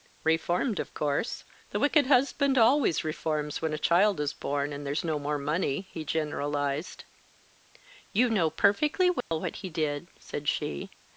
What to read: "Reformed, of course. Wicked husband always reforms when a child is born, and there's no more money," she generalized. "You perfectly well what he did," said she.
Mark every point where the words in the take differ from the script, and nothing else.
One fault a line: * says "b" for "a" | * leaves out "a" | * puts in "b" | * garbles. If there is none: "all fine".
* puts in "The"
* says "he" for "she"
* puts in "know"